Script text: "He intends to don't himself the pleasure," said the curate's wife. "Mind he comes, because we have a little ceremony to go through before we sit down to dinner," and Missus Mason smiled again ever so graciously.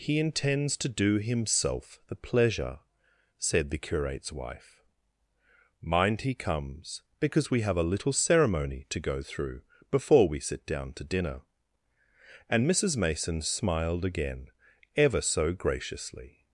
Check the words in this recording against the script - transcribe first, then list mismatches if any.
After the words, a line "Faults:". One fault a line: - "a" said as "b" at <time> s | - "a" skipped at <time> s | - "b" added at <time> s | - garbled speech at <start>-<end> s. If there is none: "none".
"He intends to do himself the pleasure," said the curate's wife. "Mind he comes, because we have a little ceremony to go through before we sit down to dinner," and Missus Mason smiled again ever so graciously.
Faults:
- "don't" said as "do" at 0.9 s